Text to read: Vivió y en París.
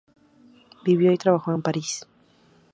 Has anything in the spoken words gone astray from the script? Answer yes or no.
yes